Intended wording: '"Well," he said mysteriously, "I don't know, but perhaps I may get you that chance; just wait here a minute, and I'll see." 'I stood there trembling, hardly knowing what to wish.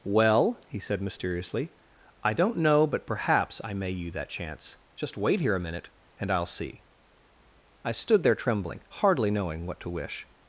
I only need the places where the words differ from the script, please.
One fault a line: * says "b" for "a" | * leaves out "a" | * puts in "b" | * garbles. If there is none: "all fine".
* leaves out "get"